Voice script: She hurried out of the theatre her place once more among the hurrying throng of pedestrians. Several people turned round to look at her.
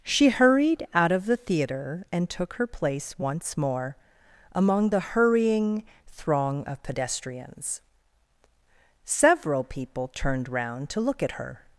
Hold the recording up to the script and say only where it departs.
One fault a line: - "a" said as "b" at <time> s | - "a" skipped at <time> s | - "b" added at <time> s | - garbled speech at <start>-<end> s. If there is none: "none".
- "and took" added at 2.1 s